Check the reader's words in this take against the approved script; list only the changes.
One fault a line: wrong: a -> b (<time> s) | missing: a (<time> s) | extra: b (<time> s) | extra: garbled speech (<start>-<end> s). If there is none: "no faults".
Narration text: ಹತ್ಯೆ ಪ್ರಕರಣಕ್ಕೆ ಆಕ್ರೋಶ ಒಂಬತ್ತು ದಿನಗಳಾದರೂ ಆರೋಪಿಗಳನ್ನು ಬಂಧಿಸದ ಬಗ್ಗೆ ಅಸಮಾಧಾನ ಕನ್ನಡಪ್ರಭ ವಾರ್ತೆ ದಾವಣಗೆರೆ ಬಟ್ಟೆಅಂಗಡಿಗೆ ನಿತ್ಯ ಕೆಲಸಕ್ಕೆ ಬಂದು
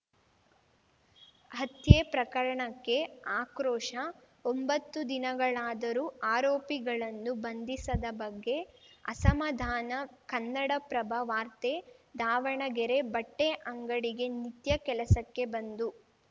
no faults